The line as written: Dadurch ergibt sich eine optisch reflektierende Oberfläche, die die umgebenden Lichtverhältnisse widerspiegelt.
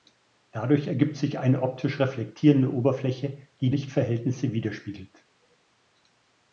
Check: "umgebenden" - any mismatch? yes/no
yes